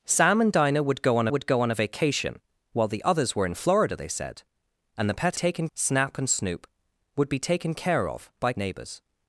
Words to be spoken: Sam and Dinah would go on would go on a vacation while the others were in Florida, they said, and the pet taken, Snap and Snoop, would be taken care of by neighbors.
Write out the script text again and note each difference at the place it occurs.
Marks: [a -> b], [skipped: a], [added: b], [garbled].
Sam and Dinah would go on would go on a vacation while the others were in Florida, they said, and the pet taken, Snap and Snoop, would be taken care of by neighbors.